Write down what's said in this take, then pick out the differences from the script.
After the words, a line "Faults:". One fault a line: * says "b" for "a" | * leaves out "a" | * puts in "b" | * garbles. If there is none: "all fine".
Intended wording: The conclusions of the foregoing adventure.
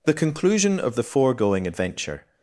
The conclusion of the foregoing adventure.
Faults:
* says "conclusion" for "conclusions"